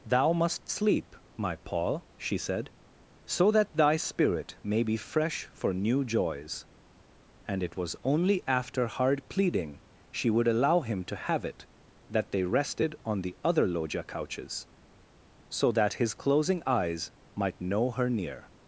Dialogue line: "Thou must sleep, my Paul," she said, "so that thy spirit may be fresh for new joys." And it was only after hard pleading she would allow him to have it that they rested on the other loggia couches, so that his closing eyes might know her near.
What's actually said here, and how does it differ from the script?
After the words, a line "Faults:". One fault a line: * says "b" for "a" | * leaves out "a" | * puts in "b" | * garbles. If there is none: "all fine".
"Thou must sleep, my Paul," she said, "so that thy spirit may be fresh for new joys." And it was only after hard pleading she would allow him to have it that they rested on the other loggia couches, so that his closing eyes might know her near.
Faults:
all fine